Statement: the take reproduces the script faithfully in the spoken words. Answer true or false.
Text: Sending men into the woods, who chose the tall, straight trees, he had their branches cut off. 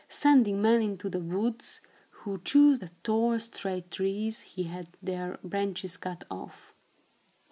true